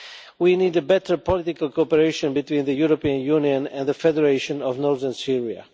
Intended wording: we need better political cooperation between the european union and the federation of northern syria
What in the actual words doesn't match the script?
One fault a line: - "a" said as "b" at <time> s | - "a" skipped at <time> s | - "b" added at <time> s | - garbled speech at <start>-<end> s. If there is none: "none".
none